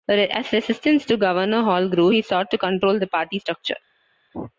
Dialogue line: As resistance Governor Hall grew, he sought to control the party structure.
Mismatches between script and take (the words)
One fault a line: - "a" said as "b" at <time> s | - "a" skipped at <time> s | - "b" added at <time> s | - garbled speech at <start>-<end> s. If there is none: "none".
- "to" added at 1.1 s